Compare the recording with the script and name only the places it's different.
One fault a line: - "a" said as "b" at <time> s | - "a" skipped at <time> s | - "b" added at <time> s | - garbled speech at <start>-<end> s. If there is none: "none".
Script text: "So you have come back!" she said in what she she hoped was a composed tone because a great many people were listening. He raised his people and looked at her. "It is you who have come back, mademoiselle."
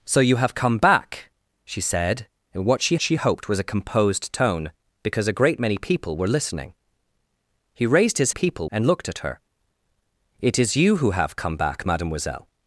none